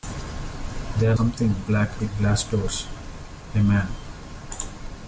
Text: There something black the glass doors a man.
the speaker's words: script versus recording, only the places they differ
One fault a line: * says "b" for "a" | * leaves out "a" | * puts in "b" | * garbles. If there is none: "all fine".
all fine